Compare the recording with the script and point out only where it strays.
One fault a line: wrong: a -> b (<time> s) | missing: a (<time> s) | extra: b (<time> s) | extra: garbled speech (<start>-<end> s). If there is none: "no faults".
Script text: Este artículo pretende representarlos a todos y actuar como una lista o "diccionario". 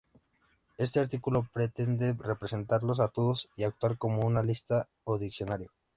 no faults